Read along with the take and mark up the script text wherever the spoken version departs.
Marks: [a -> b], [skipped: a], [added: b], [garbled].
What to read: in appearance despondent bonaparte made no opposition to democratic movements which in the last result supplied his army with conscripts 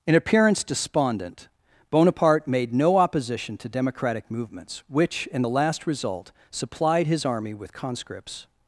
in appearance despondent bonaparte made no opposition to democratic movements which in the last result supplied his army with conscripts